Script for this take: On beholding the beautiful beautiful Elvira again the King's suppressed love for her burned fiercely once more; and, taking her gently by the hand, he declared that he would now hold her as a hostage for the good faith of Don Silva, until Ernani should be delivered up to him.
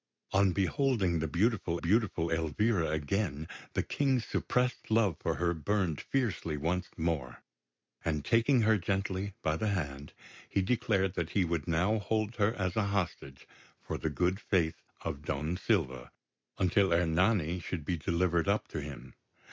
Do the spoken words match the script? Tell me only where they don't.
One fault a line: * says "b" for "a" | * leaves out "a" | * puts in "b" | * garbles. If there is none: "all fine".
all fine